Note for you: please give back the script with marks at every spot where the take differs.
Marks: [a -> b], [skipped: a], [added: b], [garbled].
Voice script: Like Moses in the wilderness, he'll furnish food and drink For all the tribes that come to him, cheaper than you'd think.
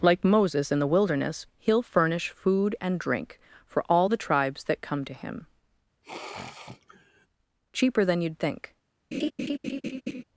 Like Moses in the wilderness, he'll furnish food and drink For all the tribes that come to him, cheaper than you'd think.